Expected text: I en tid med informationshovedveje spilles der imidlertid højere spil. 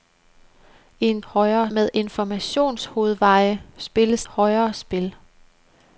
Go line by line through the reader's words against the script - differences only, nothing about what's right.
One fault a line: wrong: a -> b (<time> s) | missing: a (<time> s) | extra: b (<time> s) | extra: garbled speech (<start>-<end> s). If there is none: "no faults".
wrong: tid -> højere (1.2 s)
missing: der imidlertid (4.3 s)